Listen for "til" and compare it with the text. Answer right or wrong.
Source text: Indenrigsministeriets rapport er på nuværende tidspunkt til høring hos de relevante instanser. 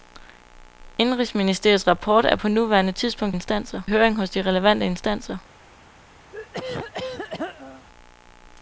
wrong